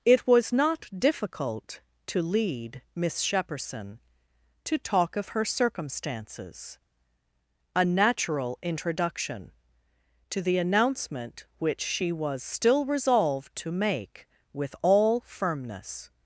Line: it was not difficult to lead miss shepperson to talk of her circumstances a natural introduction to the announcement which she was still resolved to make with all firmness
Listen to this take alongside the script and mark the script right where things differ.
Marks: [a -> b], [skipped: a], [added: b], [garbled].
it was not difficult to lead miss shepperson to talk of her circumstances a natural introduction to the announcement which she was still resolved to make with all firmness